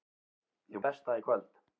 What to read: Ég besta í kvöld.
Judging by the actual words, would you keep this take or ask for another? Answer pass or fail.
pass